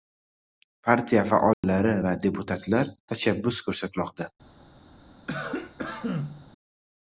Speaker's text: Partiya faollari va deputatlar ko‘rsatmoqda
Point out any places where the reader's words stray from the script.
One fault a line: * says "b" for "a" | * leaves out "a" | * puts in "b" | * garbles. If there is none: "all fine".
* puts in "tashabbus"